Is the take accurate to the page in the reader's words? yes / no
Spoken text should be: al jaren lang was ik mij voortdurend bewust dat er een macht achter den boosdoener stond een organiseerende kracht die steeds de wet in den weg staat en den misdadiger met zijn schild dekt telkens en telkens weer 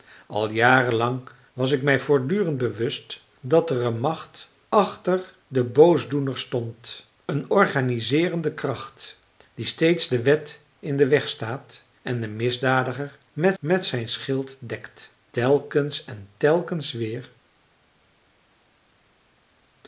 no